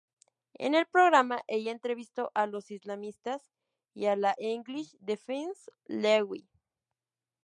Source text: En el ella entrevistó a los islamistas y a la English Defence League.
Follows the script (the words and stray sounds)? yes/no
no